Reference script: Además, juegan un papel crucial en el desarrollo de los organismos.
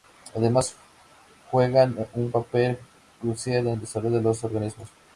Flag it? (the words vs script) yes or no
no